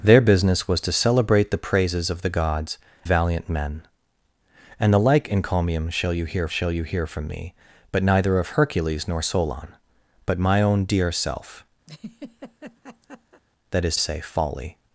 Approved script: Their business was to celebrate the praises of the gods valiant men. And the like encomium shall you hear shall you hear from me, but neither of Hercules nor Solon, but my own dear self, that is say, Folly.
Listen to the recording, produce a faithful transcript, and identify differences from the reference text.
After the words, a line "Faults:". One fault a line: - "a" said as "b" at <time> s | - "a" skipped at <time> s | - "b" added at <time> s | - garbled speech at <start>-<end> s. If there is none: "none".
Their business was to celebrate the praises of the gods valiant men. And the like encomium shall you hear shall you hear from me, but neither of Hercules nor Solon, but my own dear self, that is say, Folly.
Faults:
none